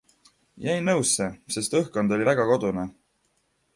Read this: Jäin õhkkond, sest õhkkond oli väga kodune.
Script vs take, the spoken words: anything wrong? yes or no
yes